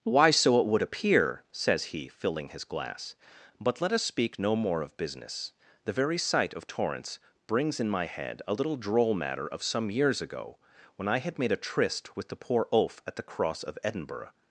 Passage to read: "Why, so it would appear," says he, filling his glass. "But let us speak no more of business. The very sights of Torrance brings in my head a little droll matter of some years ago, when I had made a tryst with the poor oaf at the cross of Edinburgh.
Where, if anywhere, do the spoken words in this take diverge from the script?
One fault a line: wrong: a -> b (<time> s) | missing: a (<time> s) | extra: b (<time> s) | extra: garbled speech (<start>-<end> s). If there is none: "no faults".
wrong: sights -> sight (6.2 s)